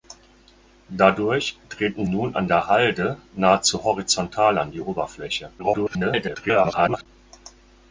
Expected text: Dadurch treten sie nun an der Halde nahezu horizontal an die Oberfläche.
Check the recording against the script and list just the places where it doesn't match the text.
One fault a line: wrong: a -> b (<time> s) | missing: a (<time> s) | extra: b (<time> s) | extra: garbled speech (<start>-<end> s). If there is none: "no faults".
missing: sie (2.1 s)
extra: garbled speech (5.6-7.1 s)